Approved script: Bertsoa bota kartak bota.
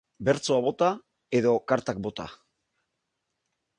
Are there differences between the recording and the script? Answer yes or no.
yes